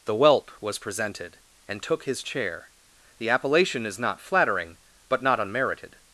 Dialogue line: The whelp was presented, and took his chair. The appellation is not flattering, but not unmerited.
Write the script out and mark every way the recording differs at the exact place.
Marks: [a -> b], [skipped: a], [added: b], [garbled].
The whelp was presented, and took his chair. The appellation is not flattering, but not unmerited.